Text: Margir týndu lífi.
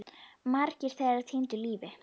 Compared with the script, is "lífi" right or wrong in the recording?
right